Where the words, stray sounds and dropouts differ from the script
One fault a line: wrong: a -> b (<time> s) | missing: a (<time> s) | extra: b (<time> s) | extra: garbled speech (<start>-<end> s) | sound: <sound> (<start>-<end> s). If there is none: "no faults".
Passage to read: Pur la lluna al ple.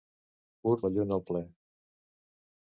no faults